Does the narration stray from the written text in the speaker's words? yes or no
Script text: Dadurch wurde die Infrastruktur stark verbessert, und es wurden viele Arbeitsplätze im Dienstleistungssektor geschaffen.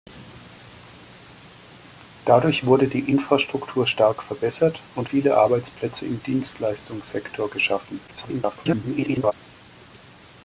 yes